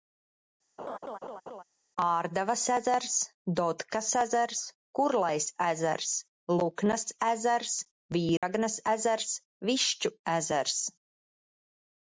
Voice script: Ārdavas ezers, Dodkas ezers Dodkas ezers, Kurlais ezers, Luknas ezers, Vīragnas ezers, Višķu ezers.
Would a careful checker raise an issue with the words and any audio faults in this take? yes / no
yes